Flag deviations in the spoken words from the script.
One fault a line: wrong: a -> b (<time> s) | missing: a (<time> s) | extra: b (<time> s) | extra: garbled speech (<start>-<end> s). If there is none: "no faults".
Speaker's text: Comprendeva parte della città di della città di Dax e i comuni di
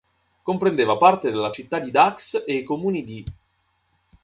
missing: della città di (1.9 s)